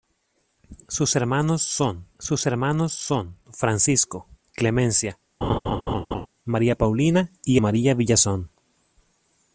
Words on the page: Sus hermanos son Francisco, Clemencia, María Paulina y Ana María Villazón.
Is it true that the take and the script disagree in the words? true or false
true